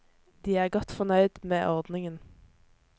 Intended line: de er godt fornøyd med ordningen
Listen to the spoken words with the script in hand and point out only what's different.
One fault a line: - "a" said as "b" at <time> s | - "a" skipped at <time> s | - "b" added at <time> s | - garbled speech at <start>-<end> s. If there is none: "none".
none